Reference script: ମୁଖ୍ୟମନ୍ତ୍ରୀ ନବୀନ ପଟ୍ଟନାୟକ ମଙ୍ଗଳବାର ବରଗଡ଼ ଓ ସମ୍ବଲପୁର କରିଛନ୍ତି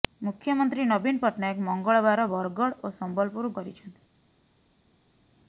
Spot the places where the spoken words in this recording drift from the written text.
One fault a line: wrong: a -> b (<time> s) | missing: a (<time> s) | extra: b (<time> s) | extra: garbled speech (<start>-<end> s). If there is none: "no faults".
no faults